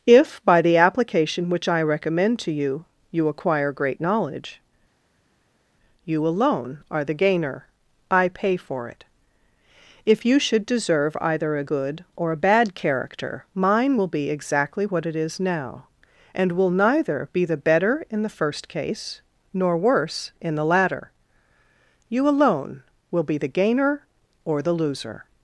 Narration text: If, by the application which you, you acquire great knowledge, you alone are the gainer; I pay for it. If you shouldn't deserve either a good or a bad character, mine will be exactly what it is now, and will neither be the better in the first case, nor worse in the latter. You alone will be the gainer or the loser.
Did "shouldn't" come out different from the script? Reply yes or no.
yes